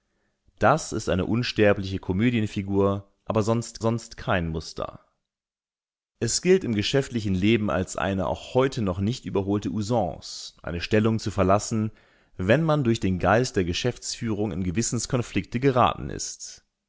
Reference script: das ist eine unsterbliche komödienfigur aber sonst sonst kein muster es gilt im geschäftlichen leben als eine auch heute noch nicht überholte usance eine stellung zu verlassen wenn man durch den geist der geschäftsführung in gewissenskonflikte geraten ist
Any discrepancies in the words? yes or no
no